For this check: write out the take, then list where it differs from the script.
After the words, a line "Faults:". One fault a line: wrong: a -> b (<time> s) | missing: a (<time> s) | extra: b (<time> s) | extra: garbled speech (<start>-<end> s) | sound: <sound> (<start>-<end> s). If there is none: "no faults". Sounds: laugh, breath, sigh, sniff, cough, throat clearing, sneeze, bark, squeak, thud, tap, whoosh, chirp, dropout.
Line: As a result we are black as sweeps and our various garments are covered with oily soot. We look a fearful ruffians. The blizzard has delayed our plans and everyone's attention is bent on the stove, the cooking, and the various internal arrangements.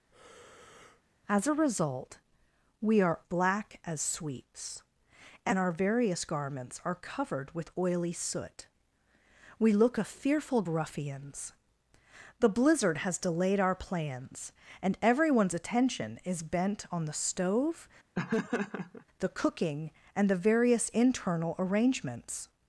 As a result we are black as sweeps and our various garments are covered with oily soot. We look a fearful ruffians. The blizzard has delayed our plans and everyone's attention is bent on the stove, the cooking, and the various internal arrangements.
Faults:
sound: breath (0.1-1.0 s)
sound: laugh (18.1-19.0 s)